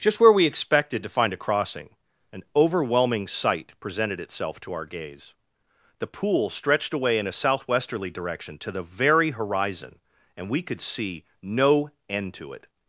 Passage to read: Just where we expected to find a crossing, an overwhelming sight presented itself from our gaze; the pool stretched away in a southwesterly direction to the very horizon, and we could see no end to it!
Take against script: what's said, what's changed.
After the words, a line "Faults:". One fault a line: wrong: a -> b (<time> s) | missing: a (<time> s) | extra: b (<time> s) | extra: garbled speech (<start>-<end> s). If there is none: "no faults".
Just where we expected to find a crossing, an overwhelming sight presented itself to our gaze; the pool stretched away in a southwesterly direction to the very horizon, and we could see no end to it!
Faults:
wrong: from -> to (4.6 s)